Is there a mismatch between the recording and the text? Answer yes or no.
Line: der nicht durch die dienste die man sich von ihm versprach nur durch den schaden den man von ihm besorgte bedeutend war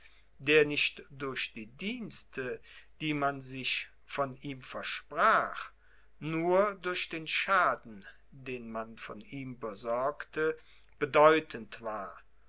no